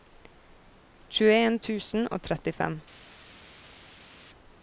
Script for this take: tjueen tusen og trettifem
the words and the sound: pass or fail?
pass